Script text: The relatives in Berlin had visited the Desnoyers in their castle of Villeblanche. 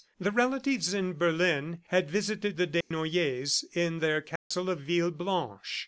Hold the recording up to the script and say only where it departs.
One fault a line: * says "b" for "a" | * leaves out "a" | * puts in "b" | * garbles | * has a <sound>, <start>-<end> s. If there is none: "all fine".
* has a dropout, 2.8-2.9 s
* has a dropout, 4.4-4.5 s